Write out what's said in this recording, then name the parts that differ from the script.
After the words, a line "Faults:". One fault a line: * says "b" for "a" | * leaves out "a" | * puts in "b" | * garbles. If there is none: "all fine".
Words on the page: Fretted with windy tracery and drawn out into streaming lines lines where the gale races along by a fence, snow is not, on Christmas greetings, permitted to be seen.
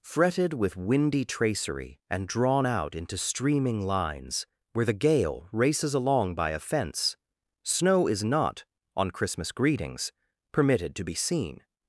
Fretted with windy tracery and drawn out into streaming lines where the gale races along by a fence, snow is not, on Christmas greetings, permitted to be seen.
Faults:
* leaves out "lines"